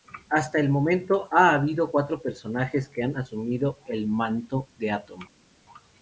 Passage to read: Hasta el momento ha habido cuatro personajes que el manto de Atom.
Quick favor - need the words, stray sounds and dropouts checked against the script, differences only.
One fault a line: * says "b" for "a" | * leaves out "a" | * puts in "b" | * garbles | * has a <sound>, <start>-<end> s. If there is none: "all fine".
* puts in "han asumido"